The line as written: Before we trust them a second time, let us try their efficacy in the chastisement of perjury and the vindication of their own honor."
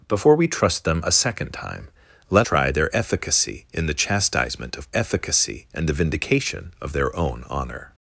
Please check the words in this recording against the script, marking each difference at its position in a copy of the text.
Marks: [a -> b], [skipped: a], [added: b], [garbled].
Before we trust them a second time, let [skipped: us] try their efficacy in the chastisement of [perjury -> efficacy] and the vindication of their own honor."